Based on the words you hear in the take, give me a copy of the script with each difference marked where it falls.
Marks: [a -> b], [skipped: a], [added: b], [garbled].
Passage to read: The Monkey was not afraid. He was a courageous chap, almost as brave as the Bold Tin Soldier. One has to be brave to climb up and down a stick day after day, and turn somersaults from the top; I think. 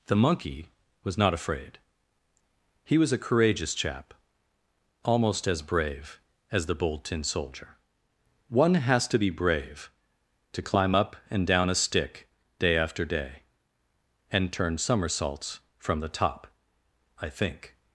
The Monkey was not afraid. He was a courageous chap, almost as brave as the Bold Tin Soldier. One has to be brave to climb up and down a stick day after day, and turn somersaults from the top; I think.